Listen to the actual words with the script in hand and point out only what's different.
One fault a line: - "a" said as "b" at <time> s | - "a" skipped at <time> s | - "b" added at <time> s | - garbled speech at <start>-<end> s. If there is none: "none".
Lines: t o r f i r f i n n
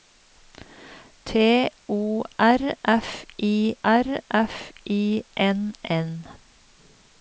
none